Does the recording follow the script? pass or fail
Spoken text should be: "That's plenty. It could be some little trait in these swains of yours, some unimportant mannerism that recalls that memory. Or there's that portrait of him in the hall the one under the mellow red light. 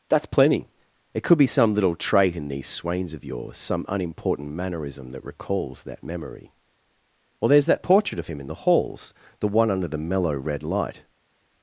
fail